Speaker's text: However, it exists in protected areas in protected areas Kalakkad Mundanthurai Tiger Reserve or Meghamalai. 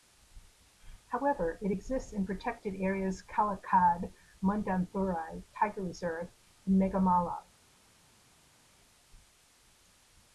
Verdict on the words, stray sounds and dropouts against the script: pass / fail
fail